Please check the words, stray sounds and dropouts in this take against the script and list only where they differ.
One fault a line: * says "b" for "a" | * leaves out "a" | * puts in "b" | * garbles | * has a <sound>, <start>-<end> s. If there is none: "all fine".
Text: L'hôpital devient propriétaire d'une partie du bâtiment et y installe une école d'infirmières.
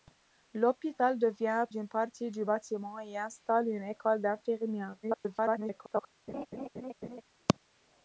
* leaves out "propriétaire"
* garbles
* has a laugh, 6.3-7.2 s